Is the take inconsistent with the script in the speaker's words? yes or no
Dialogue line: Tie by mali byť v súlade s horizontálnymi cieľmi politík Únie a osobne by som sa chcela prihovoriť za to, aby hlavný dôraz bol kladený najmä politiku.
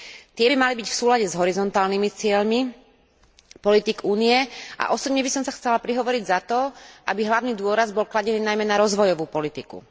yes